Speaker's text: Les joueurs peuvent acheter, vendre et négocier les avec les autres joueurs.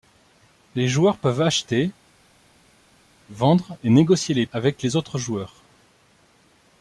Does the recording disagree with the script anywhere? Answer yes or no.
no